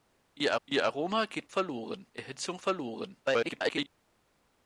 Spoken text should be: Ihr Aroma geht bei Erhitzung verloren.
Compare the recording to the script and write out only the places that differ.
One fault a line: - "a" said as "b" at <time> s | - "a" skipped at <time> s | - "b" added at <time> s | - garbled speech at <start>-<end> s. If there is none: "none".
- "ihr" added at 0.6 s
- "bei" said as "verloren" at 1.5 s
- garbled speech at 3.2-3.9 s